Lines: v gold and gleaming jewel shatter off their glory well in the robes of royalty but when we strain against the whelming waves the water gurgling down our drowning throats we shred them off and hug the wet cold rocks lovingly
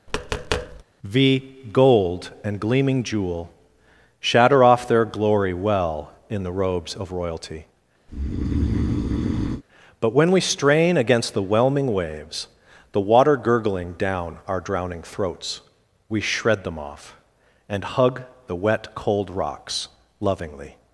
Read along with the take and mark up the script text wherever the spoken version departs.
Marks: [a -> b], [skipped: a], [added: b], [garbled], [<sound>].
[tap] v gold and gleaming jewel shatter off their glory well in the robes of royalty [breath] but when we strain against the whelming waves the water gurgling down our drowning throats we shred them off and hug the wet cold rocks lovingly